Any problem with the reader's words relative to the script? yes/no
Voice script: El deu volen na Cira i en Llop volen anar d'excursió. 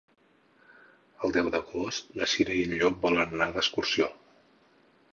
yes